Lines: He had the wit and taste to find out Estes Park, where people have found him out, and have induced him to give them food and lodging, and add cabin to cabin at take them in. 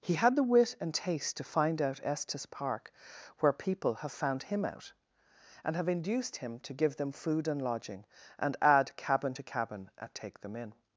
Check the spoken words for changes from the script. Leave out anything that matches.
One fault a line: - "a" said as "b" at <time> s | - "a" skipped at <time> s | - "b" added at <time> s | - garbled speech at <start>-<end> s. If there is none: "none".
none